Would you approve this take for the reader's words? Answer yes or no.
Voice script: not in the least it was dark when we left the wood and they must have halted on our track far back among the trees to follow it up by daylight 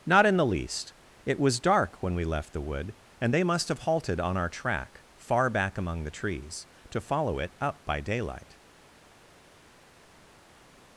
yes